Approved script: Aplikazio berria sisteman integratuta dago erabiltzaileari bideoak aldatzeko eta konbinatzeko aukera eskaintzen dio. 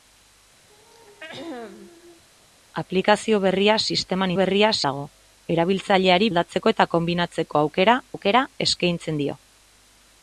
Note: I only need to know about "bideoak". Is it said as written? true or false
false